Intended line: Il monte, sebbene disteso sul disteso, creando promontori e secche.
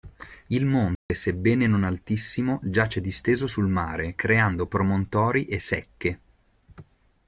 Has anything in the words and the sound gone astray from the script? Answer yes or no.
yes